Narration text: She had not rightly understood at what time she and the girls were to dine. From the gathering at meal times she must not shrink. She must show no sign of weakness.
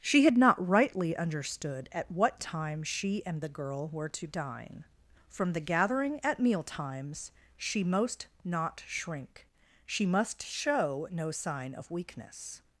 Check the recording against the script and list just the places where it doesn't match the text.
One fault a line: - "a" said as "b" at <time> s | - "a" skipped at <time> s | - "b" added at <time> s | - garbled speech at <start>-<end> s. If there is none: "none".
- "girls" said as "girl" at 3.5 s
- "must" said as "most" at 7.8 s